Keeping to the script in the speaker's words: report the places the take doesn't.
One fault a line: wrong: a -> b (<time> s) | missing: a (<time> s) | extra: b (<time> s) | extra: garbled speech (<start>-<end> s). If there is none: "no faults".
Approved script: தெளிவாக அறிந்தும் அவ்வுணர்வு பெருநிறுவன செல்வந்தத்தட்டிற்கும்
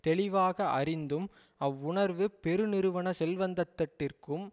no faults